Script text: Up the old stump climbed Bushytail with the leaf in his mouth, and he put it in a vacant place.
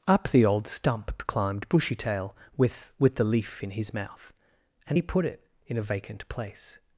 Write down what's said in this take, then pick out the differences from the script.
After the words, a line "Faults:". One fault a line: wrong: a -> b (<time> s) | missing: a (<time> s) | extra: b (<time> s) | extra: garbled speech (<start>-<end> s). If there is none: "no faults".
Up the old stump climbed Bushytail with with the leaf in his mouth, and he put it in a vacant place.
Faults:
extra: with (3.0 s)